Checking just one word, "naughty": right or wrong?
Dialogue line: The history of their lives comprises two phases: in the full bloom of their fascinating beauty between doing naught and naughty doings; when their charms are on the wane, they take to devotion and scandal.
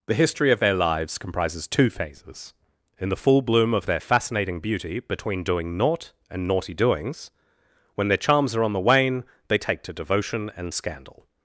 right